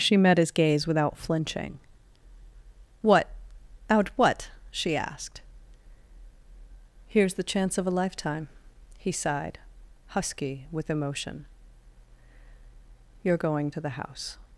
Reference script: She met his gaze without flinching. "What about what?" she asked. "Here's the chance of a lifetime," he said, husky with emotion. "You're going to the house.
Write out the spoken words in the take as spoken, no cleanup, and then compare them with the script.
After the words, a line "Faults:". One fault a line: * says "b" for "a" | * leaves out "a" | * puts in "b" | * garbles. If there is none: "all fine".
She met his gaze without flinching. "What out what?" she asked. "Here's the chance of a lifetime," he sighed, husky with emotion. "You're going to the house.
Faults:
* says "out" for "about"
* says "sighed" for "said"